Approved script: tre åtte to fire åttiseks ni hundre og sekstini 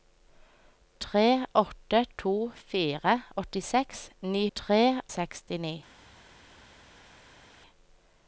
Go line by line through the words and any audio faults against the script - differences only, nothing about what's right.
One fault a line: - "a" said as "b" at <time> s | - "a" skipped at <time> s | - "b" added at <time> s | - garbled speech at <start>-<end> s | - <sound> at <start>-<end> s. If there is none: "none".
- "hundre" said as "tre" at 4.5 s